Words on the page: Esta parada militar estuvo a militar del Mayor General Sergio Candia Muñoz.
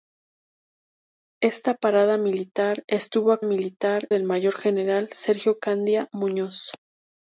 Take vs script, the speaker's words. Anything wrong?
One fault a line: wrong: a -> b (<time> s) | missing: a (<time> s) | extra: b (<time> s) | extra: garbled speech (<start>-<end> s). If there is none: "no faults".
no faults